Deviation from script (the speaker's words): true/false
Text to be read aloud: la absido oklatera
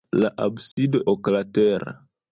false